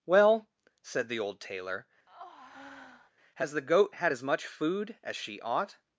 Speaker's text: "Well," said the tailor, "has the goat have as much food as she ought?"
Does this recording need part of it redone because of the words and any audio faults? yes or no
yes